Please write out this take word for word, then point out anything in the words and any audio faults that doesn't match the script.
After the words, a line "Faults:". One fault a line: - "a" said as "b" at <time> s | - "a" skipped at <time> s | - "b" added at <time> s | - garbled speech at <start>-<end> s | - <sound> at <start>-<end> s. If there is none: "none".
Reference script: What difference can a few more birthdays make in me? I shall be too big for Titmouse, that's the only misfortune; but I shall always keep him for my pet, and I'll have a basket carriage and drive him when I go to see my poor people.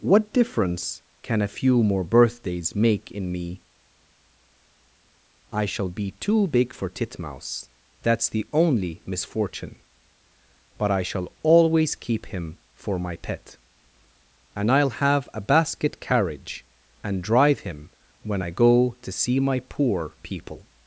What difference can a few more birthdays make in me? I shall be too big for Titmouse, that's the only misfortune; but I shall always keep him for my pet, and I'll have a basket carriage and drive him when I go to see my poor people.
Faults:
none